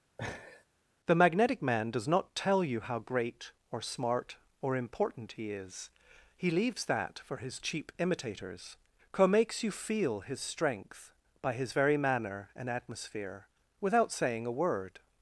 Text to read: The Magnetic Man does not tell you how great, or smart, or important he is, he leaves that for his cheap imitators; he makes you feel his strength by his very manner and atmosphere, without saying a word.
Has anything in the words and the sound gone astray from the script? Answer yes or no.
yes